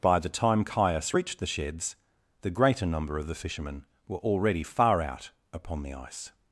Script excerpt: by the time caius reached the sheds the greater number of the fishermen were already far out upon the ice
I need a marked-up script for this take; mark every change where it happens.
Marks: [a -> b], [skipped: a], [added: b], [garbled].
by the time caius reached the sheds the greater number of the fishermen were already far out upon the ice